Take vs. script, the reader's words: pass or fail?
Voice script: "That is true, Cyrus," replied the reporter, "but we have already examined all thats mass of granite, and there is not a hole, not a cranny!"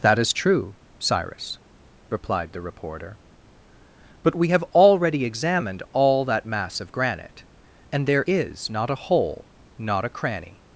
fail